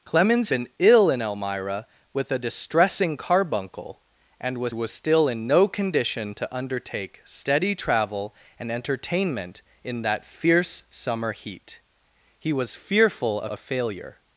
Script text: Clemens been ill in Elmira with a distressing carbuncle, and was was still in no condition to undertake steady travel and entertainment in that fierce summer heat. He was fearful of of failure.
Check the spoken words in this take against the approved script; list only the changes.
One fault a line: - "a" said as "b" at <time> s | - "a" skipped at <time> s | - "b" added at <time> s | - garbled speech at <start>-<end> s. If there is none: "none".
none